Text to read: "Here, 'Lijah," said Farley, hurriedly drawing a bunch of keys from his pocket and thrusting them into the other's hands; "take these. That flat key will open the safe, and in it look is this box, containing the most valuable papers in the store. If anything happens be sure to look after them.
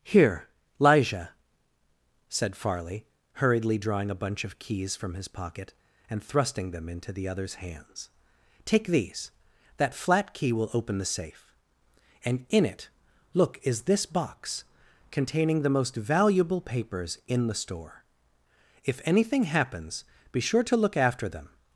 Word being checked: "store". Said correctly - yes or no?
yes